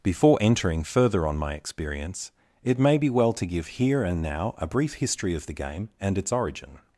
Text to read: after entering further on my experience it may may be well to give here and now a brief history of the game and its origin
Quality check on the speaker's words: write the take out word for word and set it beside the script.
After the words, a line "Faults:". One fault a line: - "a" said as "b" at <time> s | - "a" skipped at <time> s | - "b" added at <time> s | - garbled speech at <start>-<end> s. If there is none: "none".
before entering further on my experience it may be well to give here and now a brief history of the game and its origin
Faults:
- "after" said as "before" at 0.0 s
- "may" skipped at 3.0 s